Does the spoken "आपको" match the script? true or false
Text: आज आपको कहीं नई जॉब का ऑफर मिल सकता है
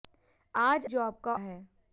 false